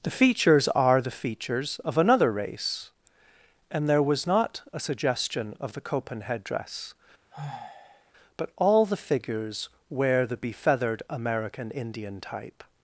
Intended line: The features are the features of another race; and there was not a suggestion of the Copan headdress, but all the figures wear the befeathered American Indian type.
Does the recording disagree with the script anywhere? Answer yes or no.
no